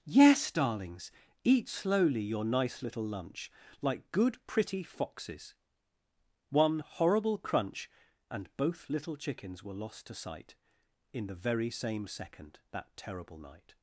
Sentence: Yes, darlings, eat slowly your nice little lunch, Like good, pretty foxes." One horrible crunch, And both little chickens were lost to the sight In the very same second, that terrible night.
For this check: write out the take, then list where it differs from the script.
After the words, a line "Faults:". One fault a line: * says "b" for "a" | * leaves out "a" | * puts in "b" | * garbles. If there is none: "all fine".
Yes, darlings, eat slowly your nice little lunch, Like good, pretty foxes." One horrible crunch, And both little chickens were lost to sight In the very same second, that terrible night.
Faults:
* leaves out "the"